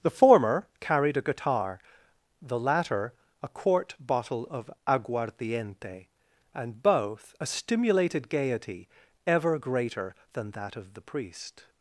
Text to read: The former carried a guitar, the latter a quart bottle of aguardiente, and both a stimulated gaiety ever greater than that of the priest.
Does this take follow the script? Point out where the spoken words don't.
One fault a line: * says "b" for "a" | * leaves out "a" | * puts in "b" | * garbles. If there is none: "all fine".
all fine